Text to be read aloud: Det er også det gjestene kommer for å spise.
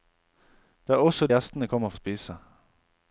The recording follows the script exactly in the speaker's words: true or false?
false